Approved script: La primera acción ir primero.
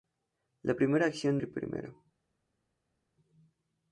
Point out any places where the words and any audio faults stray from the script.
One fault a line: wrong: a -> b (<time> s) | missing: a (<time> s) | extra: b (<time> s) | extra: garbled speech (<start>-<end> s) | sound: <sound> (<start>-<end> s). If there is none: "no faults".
no faults